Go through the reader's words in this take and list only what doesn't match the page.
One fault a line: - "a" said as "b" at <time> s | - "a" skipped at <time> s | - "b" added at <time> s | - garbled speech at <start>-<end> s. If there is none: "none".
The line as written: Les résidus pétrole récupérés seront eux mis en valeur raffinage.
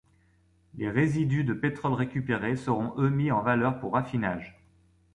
- "de" added at 1.4 s
- "pour" added at 3.8 s